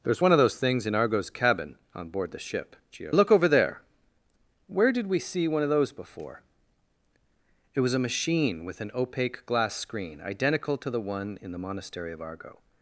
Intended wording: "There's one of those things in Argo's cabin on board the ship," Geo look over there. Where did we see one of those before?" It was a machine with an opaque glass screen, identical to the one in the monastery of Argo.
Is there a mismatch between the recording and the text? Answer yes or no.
no